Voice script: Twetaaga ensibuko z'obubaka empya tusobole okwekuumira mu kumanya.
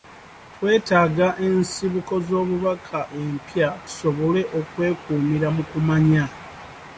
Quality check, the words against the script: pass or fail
pass